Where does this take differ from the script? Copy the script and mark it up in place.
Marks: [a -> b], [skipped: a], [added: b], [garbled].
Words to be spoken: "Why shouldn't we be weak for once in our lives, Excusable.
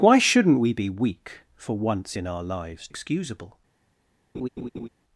"Why shouldn't we be weak for once in our lives, Excusable.